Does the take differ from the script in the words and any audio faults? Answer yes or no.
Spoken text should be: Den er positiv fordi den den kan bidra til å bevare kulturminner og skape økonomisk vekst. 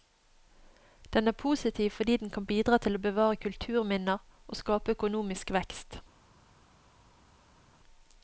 yes